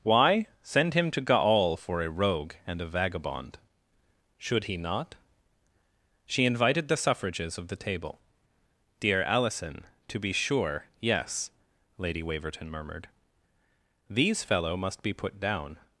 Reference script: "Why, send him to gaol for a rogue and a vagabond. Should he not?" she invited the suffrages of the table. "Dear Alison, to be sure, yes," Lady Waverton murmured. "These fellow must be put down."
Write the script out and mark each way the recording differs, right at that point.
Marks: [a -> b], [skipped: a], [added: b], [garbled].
"Why, send him to gaol for a rogue and a vagabond. Should he not?" she invited the suffrages of the table. "Dear Alison, to be sure, yes," Lady Waverton murmured. "These fellow must be put down."